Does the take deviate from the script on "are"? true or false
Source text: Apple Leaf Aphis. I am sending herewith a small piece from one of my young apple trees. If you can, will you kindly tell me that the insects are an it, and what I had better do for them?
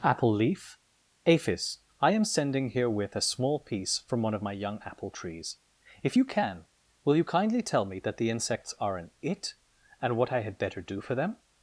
false